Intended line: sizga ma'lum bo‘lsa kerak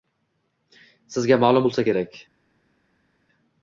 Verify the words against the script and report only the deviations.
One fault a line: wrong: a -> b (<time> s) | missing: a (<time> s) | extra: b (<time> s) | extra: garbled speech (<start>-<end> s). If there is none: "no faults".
no faults